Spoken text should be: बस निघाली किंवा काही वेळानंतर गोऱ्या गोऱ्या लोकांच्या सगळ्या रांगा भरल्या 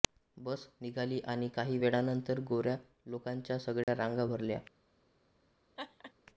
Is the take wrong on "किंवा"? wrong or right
wrong